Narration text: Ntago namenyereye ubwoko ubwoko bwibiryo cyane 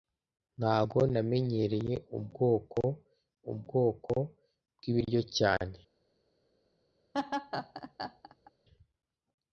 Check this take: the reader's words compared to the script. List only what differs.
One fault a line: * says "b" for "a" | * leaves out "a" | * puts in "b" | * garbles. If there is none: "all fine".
all fine